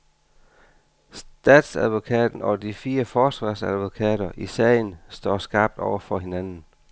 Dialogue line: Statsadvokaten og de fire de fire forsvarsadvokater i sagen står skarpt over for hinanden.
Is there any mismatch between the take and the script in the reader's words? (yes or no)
yes